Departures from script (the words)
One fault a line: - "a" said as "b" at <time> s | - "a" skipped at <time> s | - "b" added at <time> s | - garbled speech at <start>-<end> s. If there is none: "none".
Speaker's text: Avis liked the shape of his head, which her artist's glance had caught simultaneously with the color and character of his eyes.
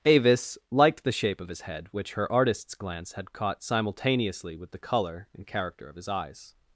none